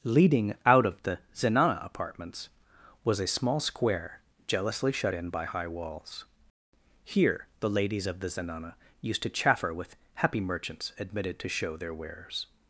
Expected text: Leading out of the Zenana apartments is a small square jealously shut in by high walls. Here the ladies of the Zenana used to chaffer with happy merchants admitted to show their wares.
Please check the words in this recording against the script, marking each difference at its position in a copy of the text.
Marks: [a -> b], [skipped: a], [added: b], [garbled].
Leading out of the Zenana apartments [is -> was] a small square jealously shut in by high walls. Here the ladies of the Zenana used to chaffer with happy merchants admitted to show their wares.